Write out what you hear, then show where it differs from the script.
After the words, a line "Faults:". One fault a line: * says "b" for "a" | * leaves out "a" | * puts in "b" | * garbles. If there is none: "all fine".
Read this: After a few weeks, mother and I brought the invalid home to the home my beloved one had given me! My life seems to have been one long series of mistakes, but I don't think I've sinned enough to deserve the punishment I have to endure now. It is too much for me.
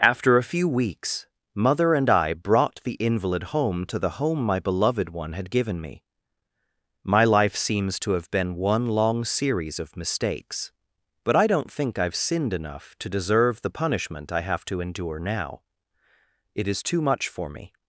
After a few weeks, mother and I brought the invalid home to the home my beloved one had given me! My life seems to have been one long series of mistakes, but I don't think I've sinned enough to deserve the punishment I have to endure now. It is too much for me.
Faults:
all fine